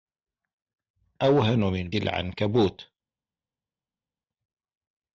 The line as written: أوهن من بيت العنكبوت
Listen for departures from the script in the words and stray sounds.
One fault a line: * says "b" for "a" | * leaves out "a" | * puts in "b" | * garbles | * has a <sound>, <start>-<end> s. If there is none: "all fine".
* leaves out "بيت"